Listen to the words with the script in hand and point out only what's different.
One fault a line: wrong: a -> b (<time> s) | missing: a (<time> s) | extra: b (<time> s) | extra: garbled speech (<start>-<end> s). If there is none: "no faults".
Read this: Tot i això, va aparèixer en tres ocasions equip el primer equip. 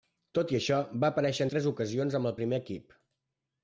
wrong: equip -> amb (2.2 s)